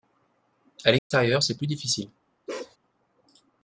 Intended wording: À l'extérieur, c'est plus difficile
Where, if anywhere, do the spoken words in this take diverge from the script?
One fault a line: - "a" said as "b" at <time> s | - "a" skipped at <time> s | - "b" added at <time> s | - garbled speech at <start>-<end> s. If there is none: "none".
none